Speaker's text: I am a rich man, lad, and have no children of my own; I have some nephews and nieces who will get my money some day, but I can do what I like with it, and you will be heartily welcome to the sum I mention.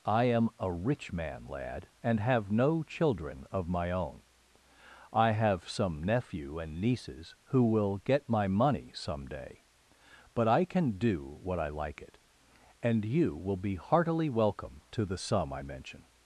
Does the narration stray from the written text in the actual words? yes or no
yes